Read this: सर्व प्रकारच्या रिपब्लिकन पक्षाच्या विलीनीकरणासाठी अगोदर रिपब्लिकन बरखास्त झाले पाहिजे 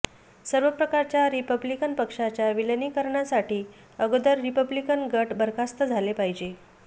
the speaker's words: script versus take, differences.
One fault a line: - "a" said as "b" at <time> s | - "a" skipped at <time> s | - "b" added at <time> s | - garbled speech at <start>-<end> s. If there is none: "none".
- "गट" added at 5.1 s